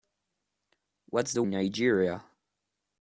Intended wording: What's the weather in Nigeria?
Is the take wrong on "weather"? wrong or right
wrong